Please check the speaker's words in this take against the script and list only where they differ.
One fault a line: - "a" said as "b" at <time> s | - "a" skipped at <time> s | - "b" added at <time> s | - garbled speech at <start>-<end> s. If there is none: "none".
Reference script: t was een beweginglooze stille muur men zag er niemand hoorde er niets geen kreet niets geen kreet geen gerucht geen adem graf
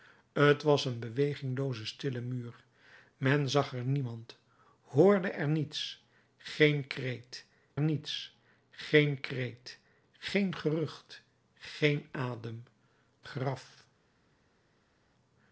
none